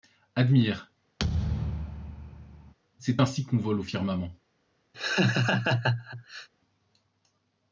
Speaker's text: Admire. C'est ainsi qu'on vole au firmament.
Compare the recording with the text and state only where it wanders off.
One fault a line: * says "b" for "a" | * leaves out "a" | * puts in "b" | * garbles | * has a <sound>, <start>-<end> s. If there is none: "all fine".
* has a thud, 1.2-2.7 s
* has a laugh, 4.9-6.5 s